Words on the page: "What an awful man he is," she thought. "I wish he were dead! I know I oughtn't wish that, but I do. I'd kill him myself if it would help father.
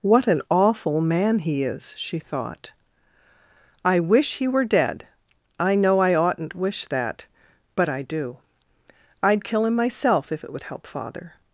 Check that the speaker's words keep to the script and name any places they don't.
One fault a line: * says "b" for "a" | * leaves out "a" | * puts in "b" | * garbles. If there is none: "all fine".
all fine